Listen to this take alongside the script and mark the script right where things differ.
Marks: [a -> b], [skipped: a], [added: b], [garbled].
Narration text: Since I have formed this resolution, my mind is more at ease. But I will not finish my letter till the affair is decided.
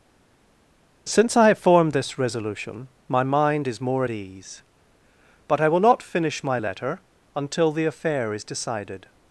Since I have formed this resolution, my mind is more at ease. But I will not finish my letter [till -> until] the affair is decided.